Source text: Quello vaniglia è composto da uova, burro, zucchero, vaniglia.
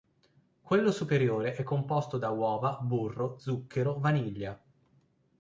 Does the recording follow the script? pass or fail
fail